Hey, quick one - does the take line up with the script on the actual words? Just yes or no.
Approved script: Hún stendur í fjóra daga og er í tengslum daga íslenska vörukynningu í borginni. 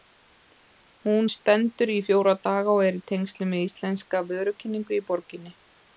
no